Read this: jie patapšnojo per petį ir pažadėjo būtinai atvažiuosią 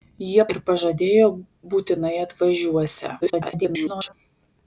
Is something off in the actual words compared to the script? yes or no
yes